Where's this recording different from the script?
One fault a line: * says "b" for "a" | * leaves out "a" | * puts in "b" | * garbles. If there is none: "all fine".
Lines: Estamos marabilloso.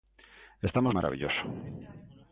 all fine